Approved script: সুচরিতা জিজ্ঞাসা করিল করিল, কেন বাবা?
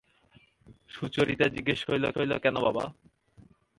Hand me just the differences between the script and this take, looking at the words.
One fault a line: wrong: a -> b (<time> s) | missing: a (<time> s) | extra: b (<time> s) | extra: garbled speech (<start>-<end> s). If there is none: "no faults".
no faults